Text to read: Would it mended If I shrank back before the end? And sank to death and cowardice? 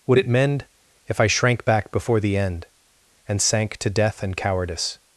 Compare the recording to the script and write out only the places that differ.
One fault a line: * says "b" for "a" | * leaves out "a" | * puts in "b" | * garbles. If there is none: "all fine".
* says "mend" for "mended"